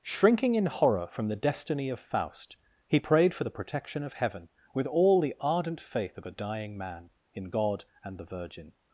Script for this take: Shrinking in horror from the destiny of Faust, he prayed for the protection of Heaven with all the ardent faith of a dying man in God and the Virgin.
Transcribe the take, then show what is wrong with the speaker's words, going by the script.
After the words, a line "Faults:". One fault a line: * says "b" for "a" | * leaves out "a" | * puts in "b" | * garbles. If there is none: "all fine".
Shrinking in horror from the destiny of Faust, he prayed for the protection of Heaven with all the ardent faith of a dying man in God and the Virgin.
Faults:
all fine